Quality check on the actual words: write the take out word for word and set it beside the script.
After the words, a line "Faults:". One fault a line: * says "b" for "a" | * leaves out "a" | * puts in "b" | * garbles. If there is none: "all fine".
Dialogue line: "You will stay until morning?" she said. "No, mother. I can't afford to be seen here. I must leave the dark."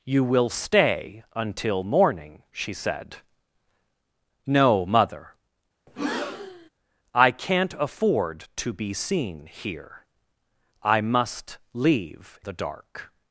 "You will stay until morning?" she said. "No, mother. I can't afford to be seen here. I must leave the dark."
Faults:
all fine